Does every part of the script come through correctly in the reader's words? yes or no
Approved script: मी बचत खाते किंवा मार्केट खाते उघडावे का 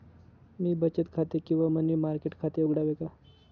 no